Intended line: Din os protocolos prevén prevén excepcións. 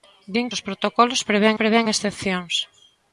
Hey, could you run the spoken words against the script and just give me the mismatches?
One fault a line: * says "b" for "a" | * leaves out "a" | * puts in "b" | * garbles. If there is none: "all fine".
all fine